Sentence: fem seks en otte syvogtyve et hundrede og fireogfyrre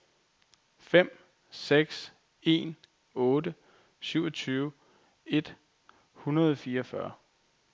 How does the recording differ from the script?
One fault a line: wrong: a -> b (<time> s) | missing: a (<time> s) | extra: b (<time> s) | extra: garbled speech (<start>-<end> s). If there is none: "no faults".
no faults